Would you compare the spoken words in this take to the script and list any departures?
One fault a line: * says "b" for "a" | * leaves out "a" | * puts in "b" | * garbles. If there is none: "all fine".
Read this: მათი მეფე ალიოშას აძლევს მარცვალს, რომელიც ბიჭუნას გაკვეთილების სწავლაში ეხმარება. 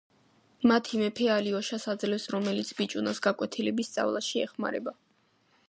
* leaves out "მარცვალს"